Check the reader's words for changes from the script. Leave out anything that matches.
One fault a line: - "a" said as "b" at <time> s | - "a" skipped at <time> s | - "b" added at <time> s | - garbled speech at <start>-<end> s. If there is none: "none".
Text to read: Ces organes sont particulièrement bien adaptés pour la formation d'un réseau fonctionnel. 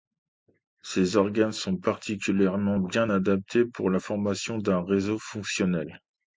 none